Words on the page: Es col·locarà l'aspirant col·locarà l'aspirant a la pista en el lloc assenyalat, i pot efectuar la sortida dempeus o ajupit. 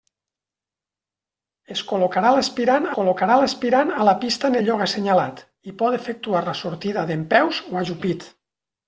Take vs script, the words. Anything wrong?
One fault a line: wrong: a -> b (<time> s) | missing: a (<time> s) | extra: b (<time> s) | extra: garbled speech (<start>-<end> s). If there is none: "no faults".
no faults